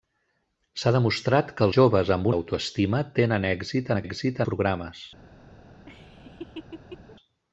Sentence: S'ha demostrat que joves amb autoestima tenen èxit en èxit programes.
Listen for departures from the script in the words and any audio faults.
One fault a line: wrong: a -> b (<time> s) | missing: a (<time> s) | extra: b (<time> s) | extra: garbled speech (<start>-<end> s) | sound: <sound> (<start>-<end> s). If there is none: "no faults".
sound: laugh (5.9-7.2 s)